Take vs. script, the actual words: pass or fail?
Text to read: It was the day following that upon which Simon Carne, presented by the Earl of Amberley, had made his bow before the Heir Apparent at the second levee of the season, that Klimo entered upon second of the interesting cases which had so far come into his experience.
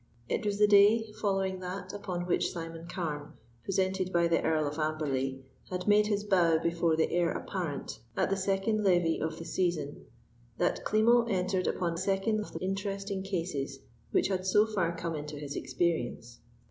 pass